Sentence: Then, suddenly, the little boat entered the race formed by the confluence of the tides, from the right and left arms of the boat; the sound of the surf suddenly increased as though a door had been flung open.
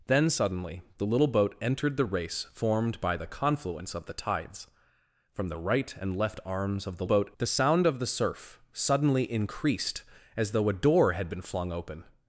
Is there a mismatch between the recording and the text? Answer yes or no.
no